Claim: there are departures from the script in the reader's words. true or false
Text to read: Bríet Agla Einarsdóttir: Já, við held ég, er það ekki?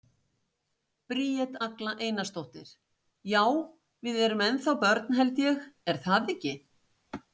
true